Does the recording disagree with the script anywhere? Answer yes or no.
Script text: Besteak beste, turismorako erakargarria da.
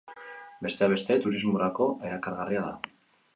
no